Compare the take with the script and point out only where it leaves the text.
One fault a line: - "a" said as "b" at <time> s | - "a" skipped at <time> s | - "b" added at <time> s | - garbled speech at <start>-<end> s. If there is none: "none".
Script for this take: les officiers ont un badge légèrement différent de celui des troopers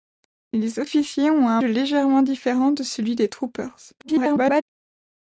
- "badge" skipped at 1.6 s
- garbled speech at 4.0-4.6 s